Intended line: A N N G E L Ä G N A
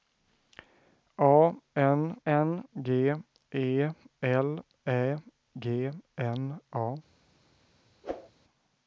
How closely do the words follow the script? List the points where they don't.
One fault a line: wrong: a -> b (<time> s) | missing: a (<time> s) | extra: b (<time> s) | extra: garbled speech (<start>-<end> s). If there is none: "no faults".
no faults